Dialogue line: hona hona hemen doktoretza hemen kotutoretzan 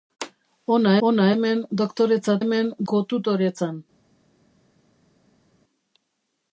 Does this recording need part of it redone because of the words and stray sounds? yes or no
no